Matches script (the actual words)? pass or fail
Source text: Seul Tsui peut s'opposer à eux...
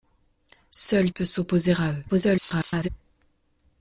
fail